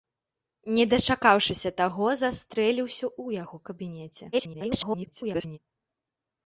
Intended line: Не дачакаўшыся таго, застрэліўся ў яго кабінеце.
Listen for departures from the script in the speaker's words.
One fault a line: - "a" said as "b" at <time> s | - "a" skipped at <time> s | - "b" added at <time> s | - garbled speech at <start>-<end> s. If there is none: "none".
- garbled speech at 4.3-5.6 s